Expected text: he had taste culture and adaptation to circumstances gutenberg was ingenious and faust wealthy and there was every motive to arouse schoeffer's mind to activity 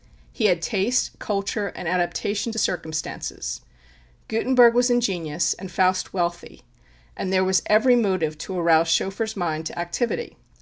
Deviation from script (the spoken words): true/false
false